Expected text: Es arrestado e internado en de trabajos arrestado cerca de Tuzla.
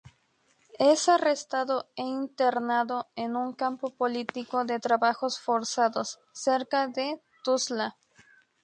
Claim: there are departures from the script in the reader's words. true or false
true